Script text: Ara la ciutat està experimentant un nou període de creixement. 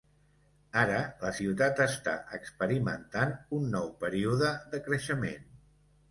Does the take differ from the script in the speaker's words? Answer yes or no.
no